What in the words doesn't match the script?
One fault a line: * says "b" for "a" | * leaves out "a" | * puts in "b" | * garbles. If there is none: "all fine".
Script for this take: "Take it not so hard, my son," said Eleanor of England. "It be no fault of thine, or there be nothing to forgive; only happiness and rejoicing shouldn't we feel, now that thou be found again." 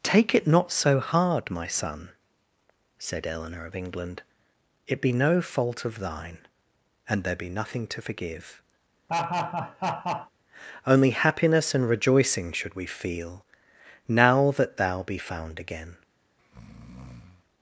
* says "and" for "or"
* says "should" for "shouldn't"